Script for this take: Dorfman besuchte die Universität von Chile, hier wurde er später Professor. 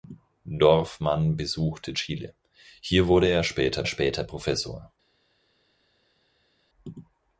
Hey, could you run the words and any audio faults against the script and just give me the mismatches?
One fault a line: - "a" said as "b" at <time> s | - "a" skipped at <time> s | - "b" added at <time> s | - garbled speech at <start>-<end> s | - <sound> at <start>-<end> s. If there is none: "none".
- "die Universität von" skipped at 1.9 s
- "später" added at 3.8 s